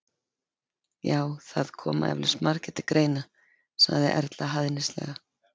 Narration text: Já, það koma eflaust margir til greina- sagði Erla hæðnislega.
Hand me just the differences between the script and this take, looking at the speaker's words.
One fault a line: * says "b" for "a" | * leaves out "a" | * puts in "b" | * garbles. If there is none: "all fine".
all fine